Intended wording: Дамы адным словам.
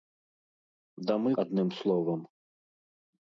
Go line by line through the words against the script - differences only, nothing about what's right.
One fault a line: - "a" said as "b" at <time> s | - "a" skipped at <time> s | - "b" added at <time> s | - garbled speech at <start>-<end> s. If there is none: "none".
none